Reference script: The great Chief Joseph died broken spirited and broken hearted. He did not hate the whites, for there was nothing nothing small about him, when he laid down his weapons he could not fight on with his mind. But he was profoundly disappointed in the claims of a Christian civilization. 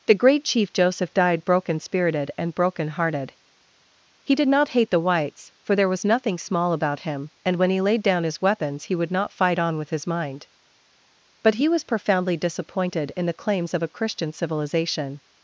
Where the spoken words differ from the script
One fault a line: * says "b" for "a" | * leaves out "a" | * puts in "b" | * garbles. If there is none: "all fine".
* leaves out "nothing"
* puts in "and"
* says "would" for "could"